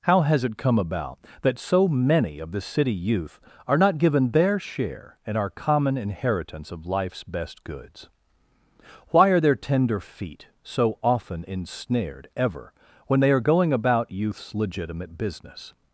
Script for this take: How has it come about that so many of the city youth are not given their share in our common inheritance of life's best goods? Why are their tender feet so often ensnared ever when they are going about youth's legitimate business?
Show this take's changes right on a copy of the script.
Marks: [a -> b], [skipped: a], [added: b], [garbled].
How has it come about that so many of the city youth are not given their share in our common inheritance of life's best goods? Why are their tender feet so often ensnared ever when they are going about youth's legitimate business?